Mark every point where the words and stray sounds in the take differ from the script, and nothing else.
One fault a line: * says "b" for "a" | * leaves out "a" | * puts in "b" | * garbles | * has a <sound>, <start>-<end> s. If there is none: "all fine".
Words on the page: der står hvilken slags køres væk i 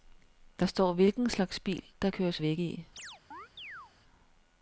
* puts in "bil der"
* has a chirp, 3.0-3.9 s